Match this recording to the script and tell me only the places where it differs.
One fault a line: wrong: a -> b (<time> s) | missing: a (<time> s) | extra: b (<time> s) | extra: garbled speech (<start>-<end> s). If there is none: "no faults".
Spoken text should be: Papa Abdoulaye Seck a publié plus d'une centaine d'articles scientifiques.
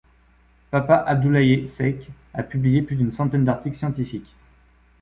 no faults